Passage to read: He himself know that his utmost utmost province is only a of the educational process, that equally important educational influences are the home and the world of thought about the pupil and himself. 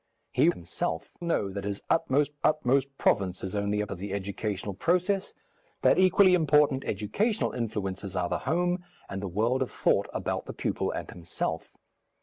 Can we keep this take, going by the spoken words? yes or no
yes